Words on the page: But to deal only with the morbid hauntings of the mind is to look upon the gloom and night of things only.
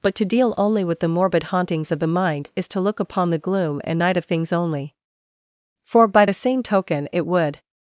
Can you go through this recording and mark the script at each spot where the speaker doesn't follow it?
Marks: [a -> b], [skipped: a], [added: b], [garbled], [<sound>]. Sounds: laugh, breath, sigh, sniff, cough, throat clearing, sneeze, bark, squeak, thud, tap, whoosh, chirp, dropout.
But to deal only with the morbid hauntings of the mind is to look upon the gloom and night of things only. [added: For by the same token it would]